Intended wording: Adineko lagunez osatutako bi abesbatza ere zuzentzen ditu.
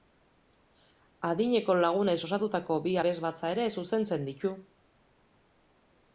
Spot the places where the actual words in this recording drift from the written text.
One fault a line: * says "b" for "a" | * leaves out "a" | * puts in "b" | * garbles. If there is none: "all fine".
all fine